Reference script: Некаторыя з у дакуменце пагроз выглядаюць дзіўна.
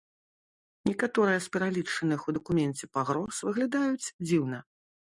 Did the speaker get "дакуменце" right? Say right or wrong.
right